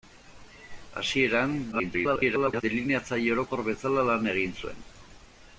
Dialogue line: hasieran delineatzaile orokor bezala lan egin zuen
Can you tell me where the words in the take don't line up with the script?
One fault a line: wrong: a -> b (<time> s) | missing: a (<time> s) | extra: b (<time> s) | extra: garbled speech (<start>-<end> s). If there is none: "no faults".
extra: garbled speech (1.7-2.6 s)